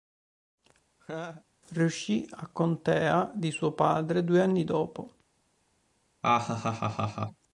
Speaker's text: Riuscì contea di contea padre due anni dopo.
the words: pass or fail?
fail